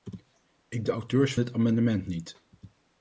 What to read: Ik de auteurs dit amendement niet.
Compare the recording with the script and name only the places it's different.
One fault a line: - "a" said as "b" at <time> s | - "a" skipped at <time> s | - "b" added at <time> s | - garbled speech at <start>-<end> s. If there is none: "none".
none